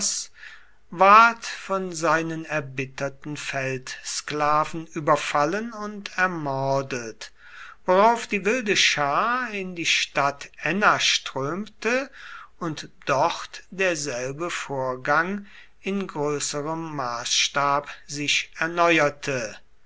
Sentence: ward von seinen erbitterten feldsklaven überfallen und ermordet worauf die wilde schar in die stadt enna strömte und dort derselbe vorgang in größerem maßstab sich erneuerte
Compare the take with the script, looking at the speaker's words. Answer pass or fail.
pass